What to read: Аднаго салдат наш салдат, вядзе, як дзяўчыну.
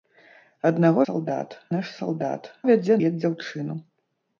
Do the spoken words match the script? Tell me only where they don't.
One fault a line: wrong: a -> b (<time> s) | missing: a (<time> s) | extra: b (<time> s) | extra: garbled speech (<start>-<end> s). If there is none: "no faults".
no faults